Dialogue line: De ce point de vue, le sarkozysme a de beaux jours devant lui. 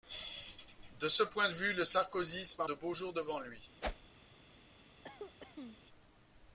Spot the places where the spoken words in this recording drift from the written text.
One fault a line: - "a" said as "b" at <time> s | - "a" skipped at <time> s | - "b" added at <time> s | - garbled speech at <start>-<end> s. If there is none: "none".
none